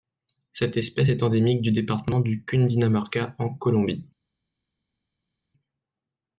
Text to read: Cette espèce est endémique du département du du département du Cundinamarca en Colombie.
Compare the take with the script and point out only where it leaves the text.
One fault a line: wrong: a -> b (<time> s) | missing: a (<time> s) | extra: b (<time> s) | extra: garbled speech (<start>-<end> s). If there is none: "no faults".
missing: du département du (2.5 s)